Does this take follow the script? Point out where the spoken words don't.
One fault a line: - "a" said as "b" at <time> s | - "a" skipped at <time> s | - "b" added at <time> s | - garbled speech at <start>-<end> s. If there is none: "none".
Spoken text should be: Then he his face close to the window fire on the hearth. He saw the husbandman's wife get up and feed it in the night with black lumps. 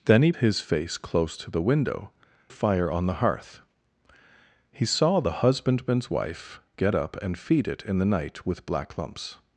none